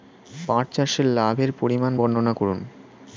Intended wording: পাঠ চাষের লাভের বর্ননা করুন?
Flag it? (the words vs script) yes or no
yes